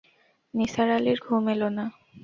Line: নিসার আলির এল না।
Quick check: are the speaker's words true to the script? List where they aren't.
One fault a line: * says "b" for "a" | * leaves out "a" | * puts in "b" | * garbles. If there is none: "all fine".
* puts in "ঘুম"